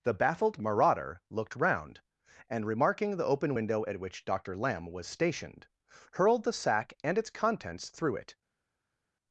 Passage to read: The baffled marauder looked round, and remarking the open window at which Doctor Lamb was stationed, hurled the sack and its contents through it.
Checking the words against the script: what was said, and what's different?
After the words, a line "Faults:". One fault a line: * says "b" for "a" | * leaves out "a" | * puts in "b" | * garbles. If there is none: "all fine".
The baffled marauder looked round, and remarking the open window at which Doctor Lamb was stationed, hurled the sack and its contents through it.
Faults:
all fine